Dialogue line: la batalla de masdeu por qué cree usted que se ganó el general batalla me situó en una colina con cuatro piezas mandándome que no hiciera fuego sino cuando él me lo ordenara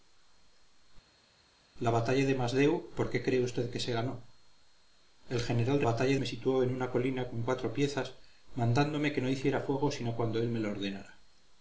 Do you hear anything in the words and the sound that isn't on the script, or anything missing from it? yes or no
no